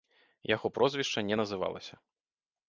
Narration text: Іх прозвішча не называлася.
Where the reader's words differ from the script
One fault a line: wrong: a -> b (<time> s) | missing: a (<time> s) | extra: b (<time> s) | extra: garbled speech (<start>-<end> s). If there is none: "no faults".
wrong: Іх -> Яго (0.5 s)